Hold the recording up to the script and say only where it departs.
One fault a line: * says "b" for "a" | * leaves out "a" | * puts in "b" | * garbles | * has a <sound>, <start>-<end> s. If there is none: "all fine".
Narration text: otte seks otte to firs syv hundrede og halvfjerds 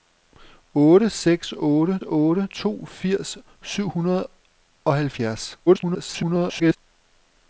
* puts in "otte"
* garbles